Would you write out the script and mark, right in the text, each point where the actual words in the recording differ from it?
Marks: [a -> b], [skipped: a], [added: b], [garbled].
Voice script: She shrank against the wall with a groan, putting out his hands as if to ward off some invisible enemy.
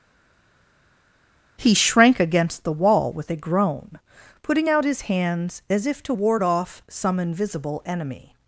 [She -> He] shrank against the wall with a groan, putting out his hands as if to ward off some invisible enemy.